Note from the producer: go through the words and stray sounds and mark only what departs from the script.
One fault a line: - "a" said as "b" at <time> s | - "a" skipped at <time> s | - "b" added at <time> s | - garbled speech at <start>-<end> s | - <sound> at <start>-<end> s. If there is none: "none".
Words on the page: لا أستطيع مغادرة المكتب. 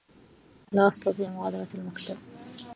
none